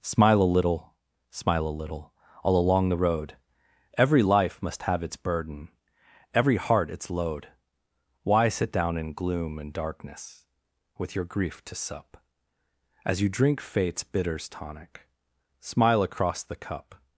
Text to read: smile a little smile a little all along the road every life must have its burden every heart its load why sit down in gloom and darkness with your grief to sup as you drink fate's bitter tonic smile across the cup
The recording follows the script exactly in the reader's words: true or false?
false